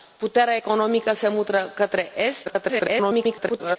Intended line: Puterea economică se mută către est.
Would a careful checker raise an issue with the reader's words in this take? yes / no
yes